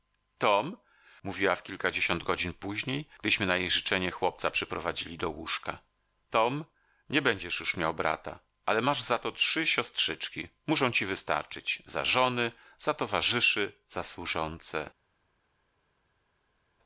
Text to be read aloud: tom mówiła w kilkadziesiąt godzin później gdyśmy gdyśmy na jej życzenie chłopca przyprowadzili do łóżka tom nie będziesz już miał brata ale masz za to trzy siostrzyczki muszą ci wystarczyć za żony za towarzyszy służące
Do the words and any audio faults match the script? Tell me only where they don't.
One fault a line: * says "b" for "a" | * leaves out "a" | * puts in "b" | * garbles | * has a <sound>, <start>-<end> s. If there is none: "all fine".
* leaves out "gdyśmy"
* puts in "za"